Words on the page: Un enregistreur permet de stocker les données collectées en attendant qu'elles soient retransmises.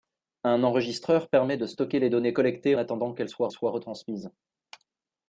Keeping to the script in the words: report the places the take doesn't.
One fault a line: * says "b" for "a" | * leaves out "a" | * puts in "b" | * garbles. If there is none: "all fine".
* leaves out "en"
* puts in "soient"